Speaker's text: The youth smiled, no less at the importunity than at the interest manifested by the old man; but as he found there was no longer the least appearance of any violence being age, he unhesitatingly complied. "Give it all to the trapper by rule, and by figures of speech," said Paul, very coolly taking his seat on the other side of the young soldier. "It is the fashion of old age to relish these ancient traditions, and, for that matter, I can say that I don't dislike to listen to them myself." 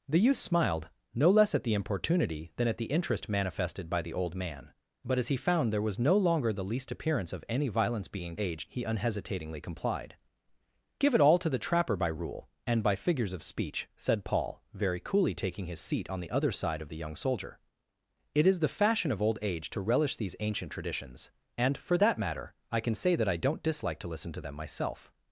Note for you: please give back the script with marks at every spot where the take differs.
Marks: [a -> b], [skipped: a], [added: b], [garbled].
The youth smiled, no less at the importunity than at the interest manifested by the old man; but as he found there was no longer the least appearance of any violence being age, he unhesitatingly complied. "Give it all to the trapper by rule, and by figures of speech," said Paul, very coolly taking his seat on the other side of the young soldier. "It is the fashion of old age to relish these ancient traditions, and, for that matter, I can say that I don't dislike to listen to them myself."